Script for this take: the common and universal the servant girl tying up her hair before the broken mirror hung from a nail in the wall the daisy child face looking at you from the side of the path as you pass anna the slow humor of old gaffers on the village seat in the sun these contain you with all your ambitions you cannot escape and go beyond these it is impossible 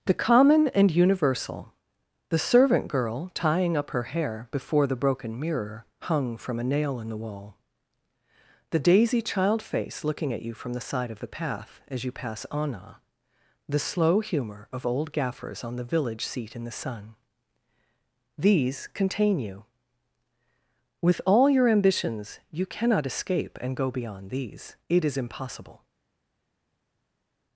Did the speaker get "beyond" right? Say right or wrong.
right